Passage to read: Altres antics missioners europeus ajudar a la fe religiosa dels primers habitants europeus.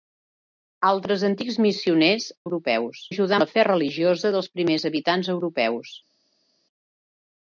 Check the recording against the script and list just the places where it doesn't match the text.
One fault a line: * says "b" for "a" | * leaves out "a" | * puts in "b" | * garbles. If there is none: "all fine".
all fine